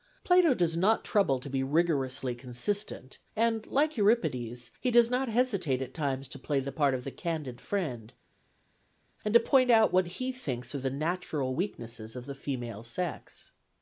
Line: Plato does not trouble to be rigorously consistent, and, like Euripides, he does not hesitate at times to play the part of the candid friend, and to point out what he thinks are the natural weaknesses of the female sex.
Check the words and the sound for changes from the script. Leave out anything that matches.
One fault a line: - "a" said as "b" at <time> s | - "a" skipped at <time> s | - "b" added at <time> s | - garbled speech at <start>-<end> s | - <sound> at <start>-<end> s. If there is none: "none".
none